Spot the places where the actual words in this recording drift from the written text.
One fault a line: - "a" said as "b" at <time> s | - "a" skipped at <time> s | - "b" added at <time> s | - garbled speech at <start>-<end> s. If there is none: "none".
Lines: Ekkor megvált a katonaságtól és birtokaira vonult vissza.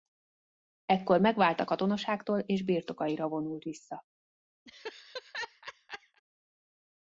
none